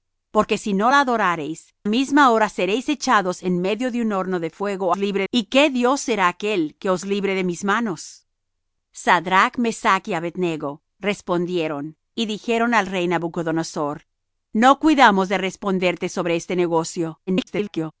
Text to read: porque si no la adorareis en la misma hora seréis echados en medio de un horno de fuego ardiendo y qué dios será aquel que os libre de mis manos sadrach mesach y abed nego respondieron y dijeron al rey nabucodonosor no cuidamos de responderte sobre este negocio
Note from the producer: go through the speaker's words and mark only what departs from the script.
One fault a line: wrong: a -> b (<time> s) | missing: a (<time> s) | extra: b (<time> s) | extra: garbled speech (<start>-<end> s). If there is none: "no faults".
missing: en la (1.7 s)
wrong: ardiendo -> libre (4.9 s)
extra: garbled speech (17.3-17.9 s)